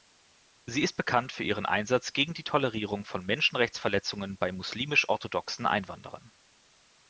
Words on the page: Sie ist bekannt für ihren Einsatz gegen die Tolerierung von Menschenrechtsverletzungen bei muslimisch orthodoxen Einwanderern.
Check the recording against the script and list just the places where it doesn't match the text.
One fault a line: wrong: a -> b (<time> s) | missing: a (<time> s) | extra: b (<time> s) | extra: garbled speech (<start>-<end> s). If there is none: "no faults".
no faults